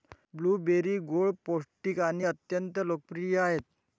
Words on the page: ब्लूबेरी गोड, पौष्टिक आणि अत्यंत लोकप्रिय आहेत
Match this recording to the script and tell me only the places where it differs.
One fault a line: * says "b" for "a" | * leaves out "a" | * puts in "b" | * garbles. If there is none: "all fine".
all fine